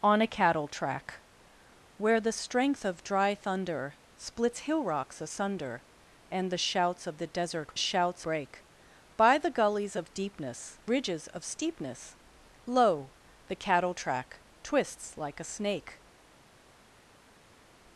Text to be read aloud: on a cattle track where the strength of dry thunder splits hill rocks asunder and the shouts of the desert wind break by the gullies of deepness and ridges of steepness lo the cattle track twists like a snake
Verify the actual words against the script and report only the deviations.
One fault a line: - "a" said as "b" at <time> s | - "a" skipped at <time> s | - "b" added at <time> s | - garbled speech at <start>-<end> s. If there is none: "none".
- "wind" said as "shouts" at 7.8 s
- "and" skipped at 10.8 s